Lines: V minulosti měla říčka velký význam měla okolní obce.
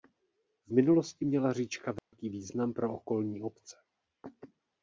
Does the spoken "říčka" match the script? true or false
true